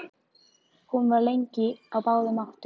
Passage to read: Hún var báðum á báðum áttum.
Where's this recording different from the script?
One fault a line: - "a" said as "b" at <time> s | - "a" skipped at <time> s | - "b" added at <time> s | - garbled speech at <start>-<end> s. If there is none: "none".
- "báðum" said as "lengi" at 1.3 s